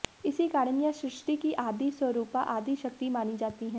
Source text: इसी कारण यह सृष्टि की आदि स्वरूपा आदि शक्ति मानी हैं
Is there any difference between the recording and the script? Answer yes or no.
yes